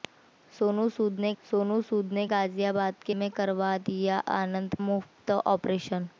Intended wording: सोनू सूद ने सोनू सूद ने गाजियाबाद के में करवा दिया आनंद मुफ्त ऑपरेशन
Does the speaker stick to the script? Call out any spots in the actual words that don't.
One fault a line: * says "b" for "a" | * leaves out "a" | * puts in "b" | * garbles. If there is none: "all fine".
all fine